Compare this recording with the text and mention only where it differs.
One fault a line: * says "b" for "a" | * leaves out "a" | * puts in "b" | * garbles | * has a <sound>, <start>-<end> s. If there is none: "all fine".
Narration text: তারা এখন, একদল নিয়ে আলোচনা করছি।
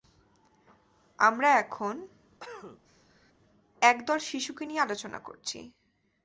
* says "আমরা" for "তারা"
* has a cough, 2.4-3.3 s
* puts in "শিশুকে"